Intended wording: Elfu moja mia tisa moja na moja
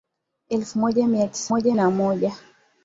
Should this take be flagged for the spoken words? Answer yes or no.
no